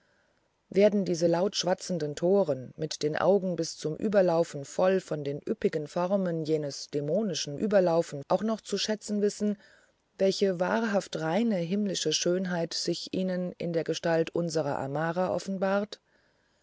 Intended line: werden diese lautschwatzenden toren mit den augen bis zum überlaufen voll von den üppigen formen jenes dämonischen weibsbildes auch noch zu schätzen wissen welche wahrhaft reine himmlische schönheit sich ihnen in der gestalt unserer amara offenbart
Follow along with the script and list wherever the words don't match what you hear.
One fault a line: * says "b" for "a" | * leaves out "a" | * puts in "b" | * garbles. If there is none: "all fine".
* says "überlaufen" for "weibsbildes"